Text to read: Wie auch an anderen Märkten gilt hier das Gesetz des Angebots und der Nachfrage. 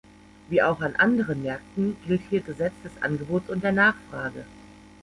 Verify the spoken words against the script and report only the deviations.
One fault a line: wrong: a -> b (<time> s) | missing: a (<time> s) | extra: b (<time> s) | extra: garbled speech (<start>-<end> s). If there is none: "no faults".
missing: das (2.4 s)